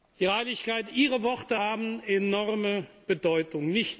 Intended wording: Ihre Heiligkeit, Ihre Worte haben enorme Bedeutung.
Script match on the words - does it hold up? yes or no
yes